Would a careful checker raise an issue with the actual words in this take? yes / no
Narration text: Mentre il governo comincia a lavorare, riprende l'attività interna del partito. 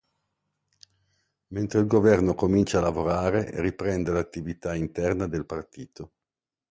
no